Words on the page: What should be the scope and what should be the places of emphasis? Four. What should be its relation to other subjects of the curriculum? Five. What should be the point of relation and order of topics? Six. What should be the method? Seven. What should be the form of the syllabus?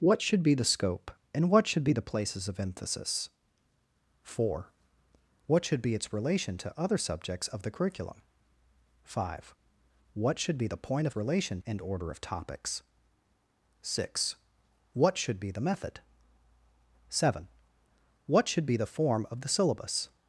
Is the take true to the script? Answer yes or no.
yes